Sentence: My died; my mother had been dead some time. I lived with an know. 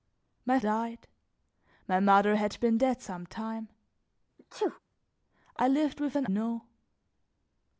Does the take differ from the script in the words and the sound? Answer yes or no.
yes